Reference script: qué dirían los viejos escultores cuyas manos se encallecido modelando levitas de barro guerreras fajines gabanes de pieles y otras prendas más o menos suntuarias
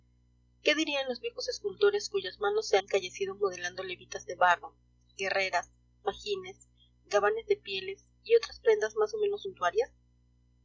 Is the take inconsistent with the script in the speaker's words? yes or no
no